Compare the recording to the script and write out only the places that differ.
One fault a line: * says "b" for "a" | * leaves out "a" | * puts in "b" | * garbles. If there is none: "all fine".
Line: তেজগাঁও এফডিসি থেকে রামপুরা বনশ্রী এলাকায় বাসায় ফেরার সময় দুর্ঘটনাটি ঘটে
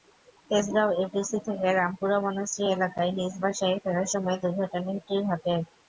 * puts in "নিজ"